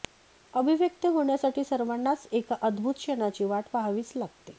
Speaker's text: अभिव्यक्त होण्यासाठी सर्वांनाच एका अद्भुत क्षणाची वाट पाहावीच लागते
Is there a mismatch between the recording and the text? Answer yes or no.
no